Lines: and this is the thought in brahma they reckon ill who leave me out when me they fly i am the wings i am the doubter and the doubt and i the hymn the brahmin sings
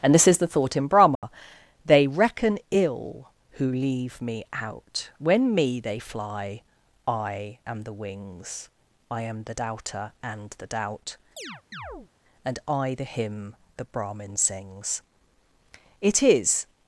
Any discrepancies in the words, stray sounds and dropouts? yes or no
yes